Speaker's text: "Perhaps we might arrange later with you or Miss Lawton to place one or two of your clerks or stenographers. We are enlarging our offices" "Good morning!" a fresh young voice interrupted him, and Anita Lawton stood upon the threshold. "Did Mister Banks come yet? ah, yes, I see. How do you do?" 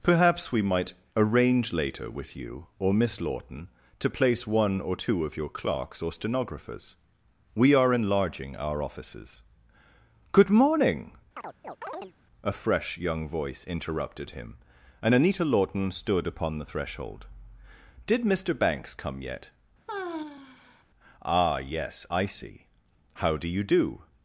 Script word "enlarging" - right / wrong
right